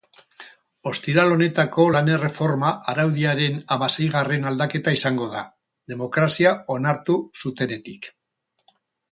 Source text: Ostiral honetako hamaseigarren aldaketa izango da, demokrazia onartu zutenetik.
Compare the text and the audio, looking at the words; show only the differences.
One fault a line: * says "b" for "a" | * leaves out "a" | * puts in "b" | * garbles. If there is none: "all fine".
* puts in "lan erreforma araudiaren"